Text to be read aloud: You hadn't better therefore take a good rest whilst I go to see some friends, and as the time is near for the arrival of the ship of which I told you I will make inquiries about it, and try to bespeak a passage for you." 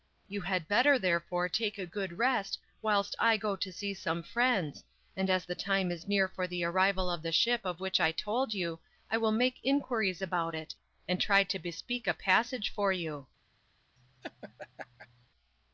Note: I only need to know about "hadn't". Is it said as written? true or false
false